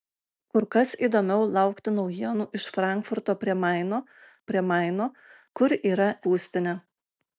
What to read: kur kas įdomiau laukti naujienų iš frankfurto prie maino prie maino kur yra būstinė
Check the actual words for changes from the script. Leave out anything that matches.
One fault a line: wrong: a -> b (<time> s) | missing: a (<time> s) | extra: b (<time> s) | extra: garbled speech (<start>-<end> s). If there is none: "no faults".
no faults